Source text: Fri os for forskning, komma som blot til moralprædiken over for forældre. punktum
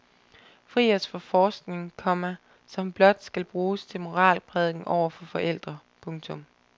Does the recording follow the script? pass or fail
fail